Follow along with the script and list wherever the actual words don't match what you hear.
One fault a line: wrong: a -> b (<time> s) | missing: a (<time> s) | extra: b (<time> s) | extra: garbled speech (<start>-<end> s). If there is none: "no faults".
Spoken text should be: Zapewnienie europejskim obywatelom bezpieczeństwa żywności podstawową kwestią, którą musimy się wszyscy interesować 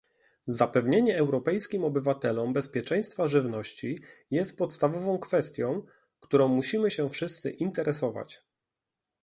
extra: jest (4.3 s)